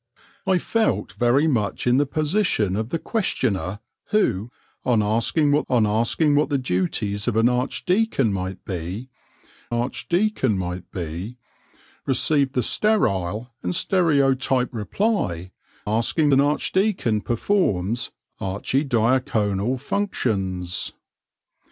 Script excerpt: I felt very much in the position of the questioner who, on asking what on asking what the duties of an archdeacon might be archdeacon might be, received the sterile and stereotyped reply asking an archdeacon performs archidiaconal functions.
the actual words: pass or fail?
pass